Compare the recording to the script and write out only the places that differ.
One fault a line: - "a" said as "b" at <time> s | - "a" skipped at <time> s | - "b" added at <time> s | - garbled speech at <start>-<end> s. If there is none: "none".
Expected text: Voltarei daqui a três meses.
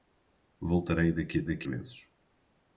- "três" said as "daqui" at 1.4 s